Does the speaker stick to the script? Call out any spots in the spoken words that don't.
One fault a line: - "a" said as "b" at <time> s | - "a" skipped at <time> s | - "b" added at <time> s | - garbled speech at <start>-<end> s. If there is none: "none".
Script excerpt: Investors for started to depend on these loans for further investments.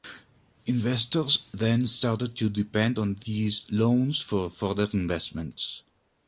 - "for" said as "then" at 1.5 s